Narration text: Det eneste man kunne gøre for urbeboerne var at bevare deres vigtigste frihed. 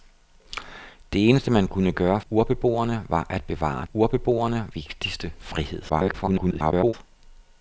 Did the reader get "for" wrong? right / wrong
wrong